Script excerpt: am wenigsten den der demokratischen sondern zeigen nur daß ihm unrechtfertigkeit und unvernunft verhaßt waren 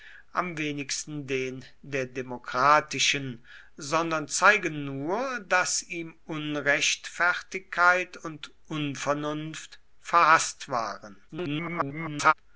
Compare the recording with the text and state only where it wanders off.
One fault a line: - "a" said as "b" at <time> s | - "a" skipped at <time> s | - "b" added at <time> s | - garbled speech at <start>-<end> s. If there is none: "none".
- garbled speech at 11.3-12.3 s